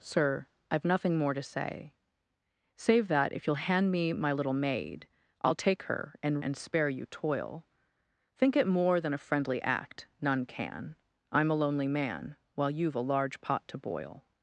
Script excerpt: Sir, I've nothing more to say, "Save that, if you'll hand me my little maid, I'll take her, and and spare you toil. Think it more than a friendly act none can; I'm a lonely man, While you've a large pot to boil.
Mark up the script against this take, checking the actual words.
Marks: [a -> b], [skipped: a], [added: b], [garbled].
Sir, I've nothing more to say, "Save that, if you'll hand me my little maid, I'll take her, and and spare you toil. Think it more than a friendly act none can; I'm a lonely man, While you've a large pot to boil.